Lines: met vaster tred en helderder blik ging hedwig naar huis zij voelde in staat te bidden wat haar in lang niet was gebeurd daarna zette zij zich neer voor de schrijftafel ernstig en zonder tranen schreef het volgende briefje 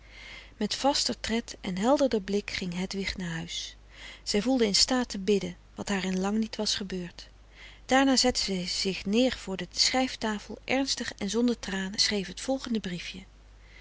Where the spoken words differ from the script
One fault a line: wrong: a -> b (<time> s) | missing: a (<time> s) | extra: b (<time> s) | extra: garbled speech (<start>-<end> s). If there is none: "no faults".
no faults